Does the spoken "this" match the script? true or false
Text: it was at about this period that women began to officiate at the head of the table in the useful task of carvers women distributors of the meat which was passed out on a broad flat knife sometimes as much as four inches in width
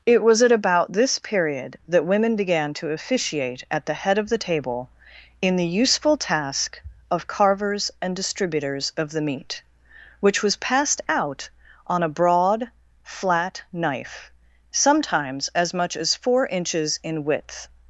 true